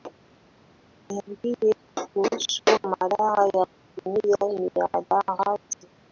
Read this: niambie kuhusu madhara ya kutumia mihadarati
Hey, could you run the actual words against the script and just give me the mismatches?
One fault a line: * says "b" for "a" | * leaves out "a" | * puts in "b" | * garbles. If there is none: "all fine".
all fine